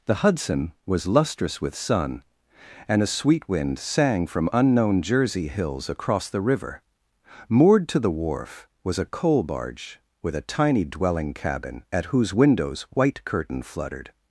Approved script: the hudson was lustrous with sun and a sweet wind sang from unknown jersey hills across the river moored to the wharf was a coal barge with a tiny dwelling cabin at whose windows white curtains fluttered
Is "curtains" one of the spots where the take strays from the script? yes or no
yes